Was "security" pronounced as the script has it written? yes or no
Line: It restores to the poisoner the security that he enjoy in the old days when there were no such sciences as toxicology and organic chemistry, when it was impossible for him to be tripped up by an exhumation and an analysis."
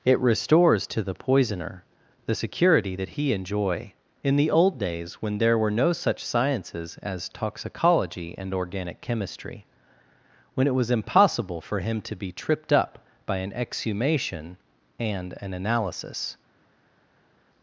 yes